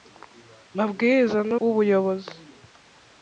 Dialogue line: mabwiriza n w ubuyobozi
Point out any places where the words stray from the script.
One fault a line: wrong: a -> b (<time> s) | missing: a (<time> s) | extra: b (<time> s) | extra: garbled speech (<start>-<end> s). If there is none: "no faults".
no faults